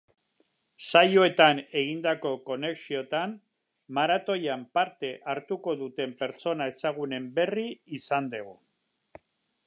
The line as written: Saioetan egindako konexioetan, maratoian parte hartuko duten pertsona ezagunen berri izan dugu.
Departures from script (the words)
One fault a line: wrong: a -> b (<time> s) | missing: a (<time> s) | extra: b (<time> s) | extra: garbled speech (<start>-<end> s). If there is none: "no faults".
no faults